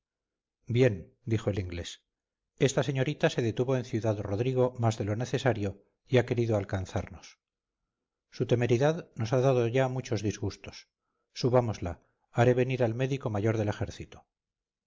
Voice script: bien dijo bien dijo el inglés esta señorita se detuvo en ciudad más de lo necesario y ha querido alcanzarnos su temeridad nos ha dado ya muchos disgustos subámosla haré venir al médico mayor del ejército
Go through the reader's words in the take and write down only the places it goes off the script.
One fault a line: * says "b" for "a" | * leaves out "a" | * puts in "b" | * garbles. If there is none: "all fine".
* leaves out "bien dijo"
* puts in "rodrigo"